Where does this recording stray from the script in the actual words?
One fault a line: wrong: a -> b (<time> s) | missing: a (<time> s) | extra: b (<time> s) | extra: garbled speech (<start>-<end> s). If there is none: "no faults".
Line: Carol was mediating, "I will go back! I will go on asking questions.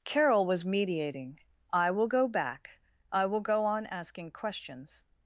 no faults